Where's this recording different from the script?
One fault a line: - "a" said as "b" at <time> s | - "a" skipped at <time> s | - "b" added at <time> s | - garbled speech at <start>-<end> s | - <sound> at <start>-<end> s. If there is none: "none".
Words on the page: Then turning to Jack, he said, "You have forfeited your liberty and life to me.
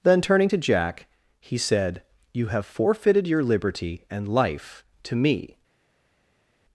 none